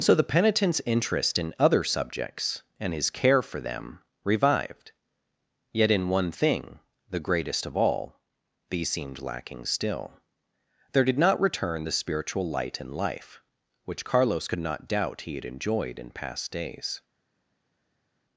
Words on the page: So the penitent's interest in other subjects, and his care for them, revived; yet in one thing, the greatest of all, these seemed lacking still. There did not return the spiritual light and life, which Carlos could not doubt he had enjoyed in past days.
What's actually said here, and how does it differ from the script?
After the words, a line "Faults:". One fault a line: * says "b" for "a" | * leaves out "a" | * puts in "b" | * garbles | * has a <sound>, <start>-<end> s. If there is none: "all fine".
So the penitent's interest in other subjects, and his care for them, revived; yet in one thing, the greatest of all, these seemed lacking still. There did not return the spiritual light and life, which Carlos could not doubt he had enjoyed in past days.
Faults:
all fine